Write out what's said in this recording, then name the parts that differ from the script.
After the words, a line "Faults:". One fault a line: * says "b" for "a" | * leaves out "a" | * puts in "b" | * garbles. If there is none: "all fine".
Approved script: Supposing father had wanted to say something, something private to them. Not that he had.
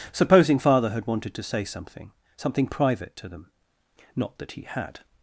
Supposing father had wanted to say something, something private to them. Not that he had.
Faults:
all fine